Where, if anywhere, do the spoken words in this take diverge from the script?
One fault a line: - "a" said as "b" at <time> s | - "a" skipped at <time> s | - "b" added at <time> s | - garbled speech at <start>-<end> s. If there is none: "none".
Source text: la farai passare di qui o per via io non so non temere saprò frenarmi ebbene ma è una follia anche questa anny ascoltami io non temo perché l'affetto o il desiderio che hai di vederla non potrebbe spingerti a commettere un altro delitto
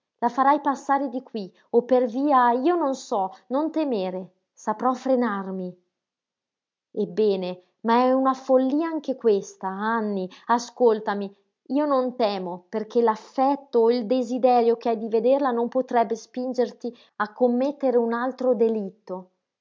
none